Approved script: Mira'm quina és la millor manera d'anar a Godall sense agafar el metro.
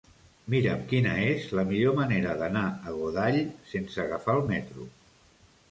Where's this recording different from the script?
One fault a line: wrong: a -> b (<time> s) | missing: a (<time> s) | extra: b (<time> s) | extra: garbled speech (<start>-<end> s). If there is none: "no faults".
no faults